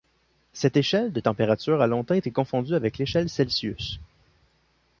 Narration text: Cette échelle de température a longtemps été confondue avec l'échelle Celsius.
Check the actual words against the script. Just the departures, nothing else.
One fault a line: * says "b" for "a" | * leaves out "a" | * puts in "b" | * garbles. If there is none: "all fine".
all fine